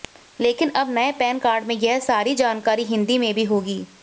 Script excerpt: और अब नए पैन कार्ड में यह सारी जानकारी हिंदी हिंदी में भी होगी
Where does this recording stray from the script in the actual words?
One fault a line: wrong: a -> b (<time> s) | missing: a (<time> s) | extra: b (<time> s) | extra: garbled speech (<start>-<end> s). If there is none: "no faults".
wrong: और -> लेकिन (0.4 s)
missing: हिंदी (3.2 s)